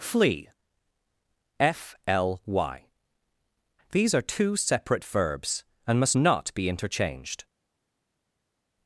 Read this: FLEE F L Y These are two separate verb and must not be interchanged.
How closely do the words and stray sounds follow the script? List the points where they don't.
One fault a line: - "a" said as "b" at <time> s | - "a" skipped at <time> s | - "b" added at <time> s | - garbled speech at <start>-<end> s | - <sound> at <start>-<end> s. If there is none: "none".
- "verb" said as "verbs" at 5.0 s